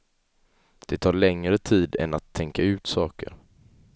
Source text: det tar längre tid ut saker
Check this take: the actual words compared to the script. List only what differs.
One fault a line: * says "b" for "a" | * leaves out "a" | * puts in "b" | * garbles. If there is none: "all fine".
* puts in "än att tänka"